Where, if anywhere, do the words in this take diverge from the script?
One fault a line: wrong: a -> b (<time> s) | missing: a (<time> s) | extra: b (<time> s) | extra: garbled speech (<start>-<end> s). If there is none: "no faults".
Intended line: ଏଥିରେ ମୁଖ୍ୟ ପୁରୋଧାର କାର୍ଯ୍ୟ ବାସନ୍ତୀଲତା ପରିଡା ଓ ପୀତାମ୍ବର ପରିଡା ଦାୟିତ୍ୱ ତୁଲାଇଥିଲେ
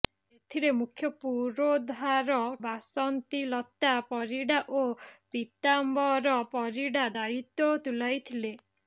missing: କାର୍ଯ୍ୟ (2.4 s)